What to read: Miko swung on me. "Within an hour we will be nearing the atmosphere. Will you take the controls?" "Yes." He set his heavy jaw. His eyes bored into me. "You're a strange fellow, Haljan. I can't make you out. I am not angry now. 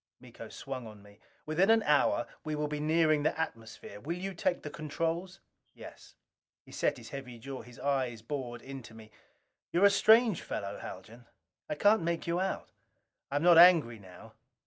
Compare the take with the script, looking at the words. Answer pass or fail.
pass